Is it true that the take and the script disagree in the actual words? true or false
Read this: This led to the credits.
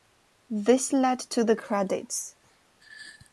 false